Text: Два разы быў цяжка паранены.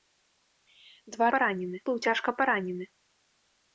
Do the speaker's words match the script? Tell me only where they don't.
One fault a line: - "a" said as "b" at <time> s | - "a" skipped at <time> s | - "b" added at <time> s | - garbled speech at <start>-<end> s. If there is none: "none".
- "разы" said as "паранены" at 1.3 s